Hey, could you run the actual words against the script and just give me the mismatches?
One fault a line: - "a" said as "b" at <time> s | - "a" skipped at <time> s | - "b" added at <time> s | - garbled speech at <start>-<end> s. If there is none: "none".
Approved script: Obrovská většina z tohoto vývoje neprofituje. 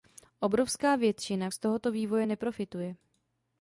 none